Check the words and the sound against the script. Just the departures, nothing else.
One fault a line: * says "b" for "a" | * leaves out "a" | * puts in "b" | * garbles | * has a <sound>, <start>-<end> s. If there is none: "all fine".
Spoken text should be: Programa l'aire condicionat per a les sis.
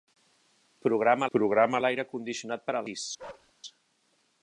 * puts in "programa"
* leaves out "les"
* has a bark, 3.2-3.5 s